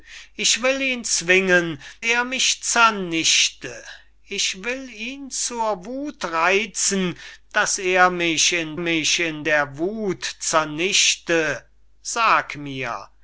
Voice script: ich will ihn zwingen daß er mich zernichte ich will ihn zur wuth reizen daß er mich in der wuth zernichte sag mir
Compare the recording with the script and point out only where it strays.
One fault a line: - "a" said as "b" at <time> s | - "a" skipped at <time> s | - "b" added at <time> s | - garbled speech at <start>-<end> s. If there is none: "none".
- "daß" skipped at 1.8 s
- "mich in" added at 8.8 s